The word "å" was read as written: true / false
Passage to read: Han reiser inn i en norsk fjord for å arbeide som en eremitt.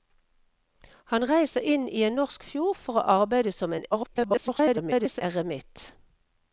true